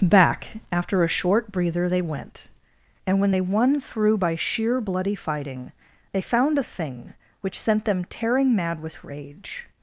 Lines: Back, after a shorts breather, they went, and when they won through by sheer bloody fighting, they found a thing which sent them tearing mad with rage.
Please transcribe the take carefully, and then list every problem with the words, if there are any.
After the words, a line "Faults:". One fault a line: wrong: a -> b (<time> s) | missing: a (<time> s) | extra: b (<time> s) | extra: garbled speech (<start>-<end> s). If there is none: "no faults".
Back, after a short breather, they went, and when they won through by sheer bloody fighting, they found a thing which sent them tearing mad with rage.
Faults:
wrong: shorts -> short (1.1 s)